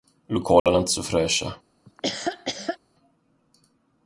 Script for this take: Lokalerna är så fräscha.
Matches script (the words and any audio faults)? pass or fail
fail